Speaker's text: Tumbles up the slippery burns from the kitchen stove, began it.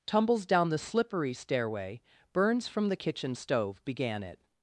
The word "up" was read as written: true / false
false